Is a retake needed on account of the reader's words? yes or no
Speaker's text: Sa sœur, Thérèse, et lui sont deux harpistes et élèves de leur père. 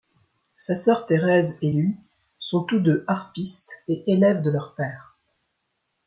yes